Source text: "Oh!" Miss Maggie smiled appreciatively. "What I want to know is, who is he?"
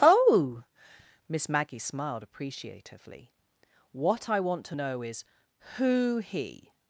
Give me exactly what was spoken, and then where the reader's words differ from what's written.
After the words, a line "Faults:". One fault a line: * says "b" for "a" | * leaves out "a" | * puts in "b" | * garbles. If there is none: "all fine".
"Oh!" Miss Maggie smiled appreciatively. "What I want to know is, who he?"
Faults:
* leaves out "is"